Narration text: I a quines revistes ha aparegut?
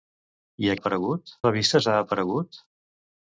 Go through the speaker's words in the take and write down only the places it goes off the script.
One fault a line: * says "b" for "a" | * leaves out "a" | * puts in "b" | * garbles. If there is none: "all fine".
* says "aparegut" for "quines"